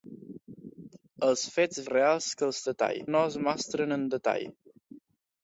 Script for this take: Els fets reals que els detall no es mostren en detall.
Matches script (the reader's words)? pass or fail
pass